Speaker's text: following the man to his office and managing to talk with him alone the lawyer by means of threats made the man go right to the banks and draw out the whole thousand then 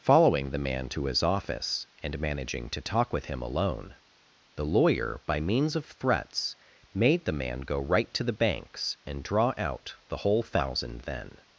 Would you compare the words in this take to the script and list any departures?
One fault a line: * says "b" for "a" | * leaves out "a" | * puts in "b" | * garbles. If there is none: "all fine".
all fine